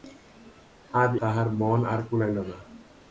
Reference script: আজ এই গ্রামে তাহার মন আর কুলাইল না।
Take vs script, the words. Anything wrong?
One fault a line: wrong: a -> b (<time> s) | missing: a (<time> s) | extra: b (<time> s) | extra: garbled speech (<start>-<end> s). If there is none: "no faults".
missing: এই গ্রামে (1.1 s)